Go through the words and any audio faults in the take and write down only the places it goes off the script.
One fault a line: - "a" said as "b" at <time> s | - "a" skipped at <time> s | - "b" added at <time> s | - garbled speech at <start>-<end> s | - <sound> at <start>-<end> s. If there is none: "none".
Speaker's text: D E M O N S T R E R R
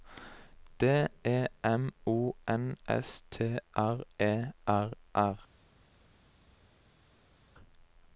none